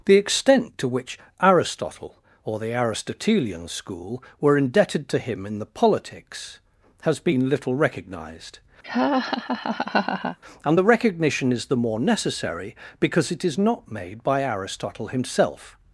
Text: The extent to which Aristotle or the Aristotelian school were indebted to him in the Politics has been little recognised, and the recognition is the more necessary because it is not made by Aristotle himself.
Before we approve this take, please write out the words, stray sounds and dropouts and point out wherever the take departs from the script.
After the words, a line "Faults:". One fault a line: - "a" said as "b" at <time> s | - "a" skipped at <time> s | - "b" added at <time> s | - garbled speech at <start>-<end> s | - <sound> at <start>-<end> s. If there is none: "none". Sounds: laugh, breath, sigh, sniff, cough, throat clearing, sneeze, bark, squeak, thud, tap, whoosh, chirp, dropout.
The extent to which Aristotle or the Aristotelian school were indebted to him in the Politics has been little recognised, and the recognition is the more necessary because it is not made by Aristotle himself.
Faults:
- laugh at 8.8-10.4 s